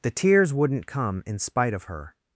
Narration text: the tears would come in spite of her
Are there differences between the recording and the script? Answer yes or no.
yes